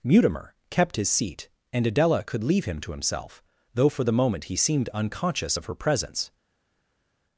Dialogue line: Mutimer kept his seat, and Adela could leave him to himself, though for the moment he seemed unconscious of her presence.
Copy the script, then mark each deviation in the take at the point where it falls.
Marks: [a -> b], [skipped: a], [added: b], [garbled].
Mutimer kept his seat, and Adela could leave him to himself, though for the moment he seemed unconscious of her presence.